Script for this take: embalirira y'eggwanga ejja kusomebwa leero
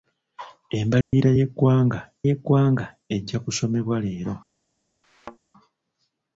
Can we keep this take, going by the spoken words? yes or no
no